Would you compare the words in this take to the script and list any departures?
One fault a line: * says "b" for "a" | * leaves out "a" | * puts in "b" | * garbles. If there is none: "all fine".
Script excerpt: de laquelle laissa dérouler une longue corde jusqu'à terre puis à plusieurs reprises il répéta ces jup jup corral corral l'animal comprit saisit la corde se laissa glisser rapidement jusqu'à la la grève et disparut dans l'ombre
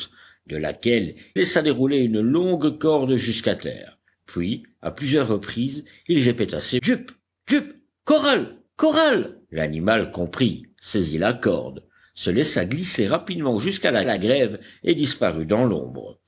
all fine